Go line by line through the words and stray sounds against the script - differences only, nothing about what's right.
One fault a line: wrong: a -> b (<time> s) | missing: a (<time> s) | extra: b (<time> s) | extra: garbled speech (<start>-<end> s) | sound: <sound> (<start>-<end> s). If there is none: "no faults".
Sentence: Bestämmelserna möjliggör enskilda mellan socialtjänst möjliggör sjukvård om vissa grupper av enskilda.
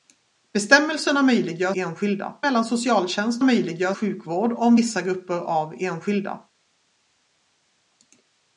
no faults